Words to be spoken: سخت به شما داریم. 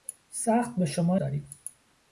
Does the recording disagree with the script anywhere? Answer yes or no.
no